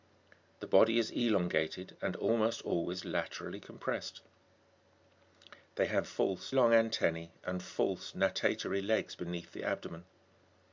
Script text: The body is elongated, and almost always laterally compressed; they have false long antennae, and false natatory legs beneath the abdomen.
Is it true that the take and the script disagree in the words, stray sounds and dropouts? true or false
false